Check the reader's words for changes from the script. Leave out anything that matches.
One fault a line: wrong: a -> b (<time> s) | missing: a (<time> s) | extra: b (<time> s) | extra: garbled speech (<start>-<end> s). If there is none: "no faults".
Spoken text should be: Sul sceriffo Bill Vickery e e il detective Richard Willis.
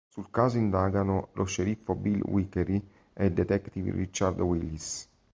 extra: caso indagano lo (0.3 s)
missing: e (3.2 s)